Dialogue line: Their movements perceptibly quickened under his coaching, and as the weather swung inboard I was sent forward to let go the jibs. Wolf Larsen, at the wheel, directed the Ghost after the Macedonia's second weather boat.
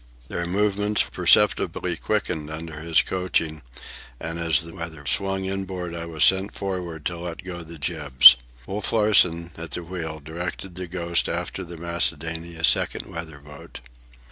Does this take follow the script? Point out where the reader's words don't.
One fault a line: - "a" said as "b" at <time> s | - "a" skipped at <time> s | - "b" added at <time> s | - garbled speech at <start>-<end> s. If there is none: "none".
none